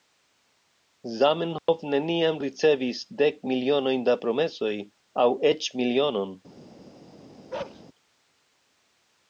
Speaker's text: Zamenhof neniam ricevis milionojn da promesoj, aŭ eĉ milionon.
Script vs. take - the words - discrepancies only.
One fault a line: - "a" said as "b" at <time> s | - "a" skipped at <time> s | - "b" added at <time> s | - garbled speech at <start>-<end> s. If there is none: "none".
- "dek" added at 3.2 s